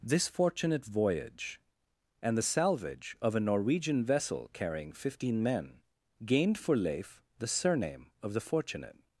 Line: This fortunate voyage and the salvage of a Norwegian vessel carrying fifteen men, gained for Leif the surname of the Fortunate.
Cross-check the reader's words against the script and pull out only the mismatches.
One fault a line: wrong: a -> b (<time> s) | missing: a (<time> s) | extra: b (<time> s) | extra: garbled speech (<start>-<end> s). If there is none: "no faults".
no faults